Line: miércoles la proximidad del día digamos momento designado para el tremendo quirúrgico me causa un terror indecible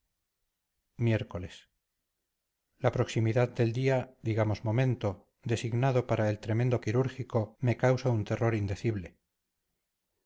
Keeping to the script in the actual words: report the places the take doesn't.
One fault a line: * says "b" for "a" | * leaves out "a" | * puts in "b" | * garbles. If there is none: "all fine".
all fine